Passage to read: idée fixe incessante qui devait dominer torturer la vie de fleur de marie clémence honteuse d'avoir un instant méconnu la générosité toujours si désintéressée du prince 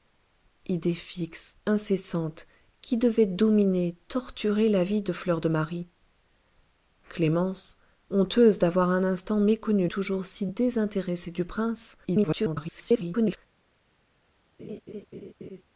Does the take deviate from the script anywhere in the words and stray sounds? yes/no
yes